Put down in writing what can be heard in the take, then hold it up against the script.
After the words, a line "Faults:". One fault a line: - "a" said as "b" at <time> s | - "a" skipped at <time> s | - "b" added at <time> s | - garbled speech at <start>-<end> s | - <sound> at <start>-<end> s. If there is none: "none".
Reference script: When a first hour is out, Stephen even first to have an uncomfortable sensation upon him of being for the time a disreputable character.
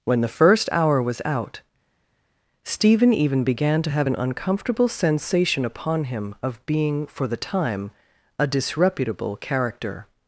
When the first hour was out, Stephen even began to have an uncomfortable sensation upon him of being for the time a disreputable character.
Faults:
- "a" said as "the" at 0.2 s
- "is" said as "was" at 1.0 s
- "first" said as "began" at 3.4 s